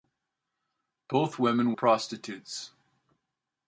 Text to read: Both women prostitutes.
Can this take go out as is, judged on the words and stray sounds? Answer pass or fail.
pass